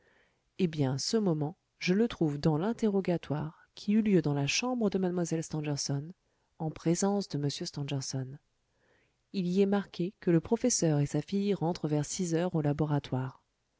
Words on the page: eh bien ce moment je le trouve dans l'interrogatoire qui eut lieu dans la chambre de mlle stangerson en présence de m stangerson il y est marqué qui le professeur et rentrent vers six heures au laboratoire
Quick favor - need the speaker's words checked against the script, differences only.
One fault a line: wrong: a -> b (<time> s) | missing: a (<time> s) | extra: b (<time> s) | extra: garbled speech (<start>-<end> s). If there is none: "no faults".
wrong: qui -> que (10.2 s)
extra: sa fille (11.0 s)